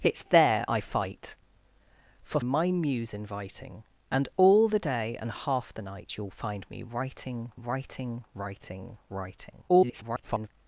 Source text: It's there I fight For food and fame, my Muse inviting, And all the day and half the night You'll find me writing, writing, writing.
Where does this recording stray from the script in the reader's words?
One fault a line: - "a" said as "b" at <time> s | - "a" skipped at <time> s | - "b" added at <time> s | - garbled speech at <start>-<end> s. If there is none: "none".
- "food and fame" skipped at 2.4 s
- "writing" added at 9.1 s
- garbled speech at 9.7-10.5 s